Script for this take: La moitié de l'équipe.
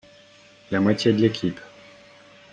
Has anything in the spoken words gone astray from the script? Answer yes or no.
no